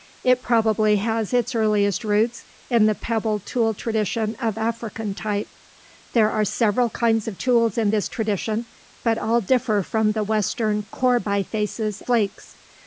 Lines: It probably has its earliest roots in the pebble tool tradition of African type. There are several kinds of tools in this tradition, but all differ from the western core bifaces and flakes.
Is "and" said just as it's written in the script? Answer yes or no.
no